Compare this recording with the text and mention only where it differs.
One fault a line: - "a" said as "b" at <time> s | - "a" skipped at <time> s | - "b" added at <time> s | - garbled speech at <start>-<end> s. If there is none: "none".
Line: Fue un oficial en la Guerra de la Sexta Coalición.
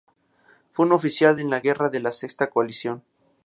none